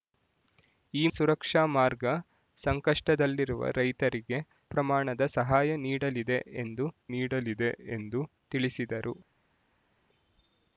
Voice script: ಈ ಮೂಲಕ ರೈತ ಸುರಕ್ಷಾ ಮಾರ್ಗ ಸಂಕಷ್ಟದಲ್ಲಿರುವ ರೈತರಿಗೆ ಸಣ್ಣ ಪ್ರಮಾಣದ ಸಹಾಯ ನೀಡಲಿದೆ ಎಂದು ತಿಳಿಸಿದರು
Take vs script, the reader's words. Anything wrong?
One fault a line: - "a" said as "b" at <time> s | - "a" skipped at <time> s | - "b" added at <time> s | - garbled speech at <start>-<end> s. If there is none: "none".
- "ಮೂಲಕ ರೈತ" skipped at 1.1 s
- "ಸಣ್ಣ" skipped at 4.4 s
- "ನೀಡಲಿದೆ ಎಂದು" added at 7.2 s